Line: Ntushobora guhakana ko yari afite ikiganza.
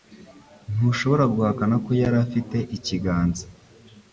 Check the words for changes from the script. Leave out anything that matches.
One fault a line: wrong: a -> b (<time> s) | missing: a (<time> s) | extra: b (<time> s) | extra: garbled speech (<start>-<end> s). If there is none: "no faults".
no faults